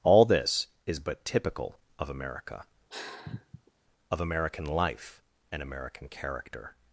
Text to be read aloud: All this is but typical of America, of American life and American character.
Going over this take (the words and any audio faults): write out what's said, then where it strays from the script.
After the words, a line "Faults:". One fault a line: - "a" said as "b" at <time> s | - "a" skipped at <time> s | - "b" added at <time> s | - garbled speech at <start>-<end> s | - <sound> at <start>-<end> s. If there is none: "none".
All this is but typical of America, of American life and American character.
Faults:
- sigh at 2.9-3.7 s